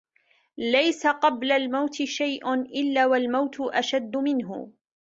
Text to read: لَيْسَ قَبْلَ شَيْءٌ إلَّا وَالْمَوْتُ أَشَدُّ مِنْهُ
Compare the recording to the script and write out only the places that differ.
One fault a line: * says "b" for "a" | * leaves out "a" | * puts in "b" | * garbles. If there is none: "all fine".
* puts in "الْمَوْتِ"